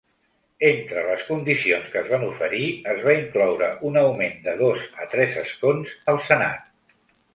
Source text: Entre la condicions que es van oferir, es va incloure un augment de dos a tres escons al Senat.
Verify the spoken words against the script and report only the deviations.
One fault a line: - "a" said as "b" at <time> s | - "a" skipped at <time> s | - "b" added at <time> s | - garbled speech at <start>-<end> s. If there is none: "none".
- "la" said as "les" at 1.1 s